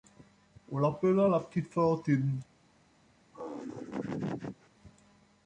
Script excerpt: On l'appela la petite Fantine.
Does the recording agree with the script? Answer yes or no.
yes